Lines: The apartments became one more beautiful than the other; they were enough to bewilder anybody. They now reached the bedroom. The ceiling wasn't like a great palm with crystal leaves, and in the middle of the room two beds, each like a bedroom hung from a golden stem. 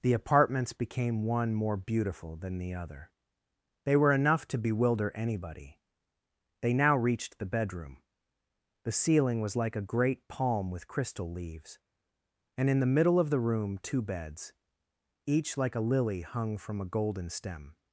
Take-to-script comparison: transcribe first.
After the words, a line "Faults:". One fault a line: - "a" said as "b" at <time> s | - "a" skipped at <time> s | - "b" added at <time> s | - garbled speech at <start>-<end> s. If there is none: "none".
The apartments became one more beautiful than the other; they were enough to bewilder anybody. They now reached the bedroom. The ceiling was like a great palm with crystal leaves, and in the middle of the room two beds, each like a lily hung from a golden stem.
Faults:
- "wasn't" said as "was" at 9.4 s
- "bedroom" said as "lily" at 16.0 s